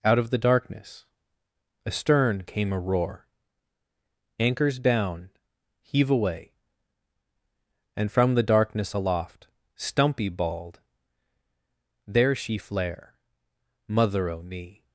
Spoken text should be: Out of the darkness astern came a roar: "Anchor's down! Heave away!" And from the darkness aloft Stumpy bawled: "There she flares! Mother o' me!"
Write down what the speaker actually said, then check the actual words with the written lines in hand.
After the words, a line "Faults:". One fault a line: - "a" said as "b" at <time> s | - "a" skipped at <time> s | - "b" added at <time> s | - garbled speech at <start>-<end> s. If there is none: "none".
Out of the darkness astern came a roar: "Anchor's down! Heave away!" And from the darkness aloft Stumpy bawled: "There she flare! Mother o' me!"
Faults:
- "flares" said as "flare" at 12.6 s